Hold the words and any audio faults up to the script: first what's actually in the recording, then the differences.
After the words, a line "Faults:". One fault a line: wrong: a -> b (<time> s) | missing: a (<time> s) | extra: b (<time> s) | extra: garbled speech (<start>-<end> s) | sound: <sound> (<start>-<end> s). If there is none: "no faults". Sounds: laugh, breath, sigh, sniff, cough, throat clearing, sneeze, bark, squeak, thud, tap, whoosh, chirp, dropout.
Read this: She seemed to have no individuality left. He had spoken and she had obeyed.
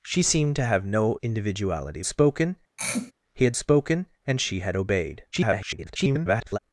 She seemed to have no individuality spoken. He had spoken and she had obeyed. [garbled]
Faults:
wrong: left -> spoken (2.0 s)
sound: throat clearing (2.8-3.1 s)
extra: garbled speech (5.3-6.6 s)